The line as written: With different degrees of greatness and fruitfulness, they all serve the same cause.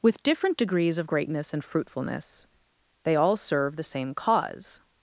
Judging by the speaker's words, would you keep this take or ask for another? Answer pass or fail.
pass